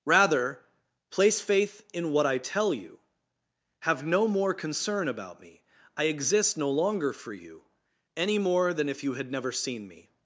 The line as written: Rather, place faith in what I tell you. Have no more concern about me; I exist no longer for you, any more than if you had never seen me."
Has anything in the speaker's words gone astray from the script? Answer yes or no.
no